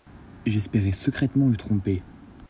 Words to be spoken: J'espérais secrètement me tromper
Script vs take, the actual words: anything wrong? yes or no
no